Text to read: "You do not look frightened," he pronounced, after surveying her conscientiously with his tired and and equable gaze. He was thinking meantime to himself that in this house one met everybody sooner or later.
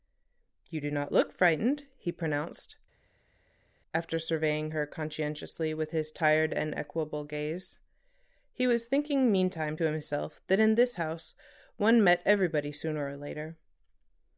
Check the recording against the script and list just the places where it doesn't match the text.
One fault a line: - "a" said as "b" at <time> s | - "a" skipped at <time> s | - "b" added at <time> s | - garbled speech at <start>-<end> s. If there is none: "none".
- "and" skipped at 6.7 s